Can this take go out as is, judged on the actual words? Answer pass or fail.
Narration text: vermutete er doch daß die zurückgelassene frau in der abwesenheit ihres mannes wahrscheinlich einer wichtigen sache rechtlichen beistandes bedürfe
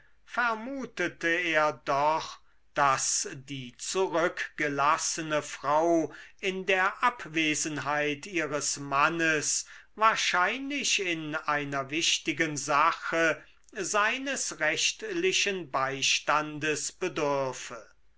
fail